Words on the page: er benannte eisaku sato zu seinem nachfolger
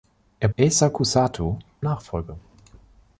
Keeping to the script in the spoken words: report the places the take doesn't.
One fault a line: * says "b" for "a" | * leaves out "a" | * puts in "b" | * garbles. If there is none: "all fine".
* leaves out "benannte"
* leaves out "zu seinem"